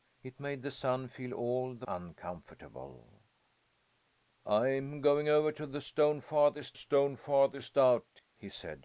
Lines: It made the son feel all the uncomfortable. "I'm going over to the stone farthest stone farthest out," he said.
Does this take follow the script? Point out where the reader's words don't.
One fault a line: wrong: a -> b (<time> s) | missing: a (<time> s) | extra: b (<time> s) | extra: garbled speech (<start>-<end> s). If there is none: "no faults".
no faults